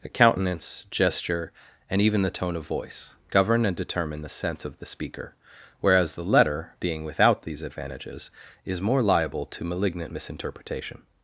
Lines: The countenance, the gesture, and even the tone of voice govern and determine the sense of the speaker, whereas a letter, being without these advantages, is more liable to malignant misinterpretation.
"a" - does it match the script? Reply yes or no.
no